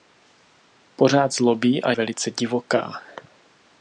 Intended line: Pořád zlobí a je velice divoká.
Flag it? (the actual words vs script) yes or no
yes